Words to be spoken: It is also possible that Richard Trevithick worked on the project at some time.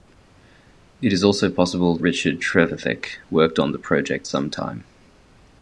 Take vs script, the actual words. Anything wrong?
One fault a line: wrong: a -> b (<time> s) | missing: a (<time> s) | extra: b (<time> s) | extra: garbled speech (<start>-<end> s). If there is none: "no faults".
missing: that (1.9 s)
missing: at (4.3 s)